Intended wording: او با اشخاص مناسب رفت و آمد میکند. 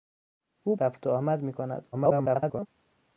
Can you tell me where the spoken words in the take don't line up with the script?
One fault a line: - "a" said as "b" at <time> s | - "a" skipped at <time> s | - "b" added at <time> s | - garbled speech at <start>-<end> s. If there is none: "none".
- "با اشخاص مناسب" skipped at 0.8 s
- garbled speech at 1.9-2.7 s